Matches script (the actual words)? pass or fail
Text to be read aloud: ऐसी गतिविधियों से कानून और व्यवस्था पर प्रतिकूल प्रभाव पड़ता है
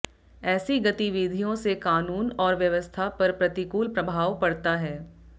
pass